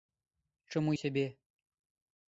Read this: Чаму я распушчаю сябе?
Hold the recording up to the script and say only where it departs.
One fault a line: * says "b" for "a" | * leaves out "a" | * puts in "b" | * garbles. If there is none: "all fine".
* leaves out "я распушчаю"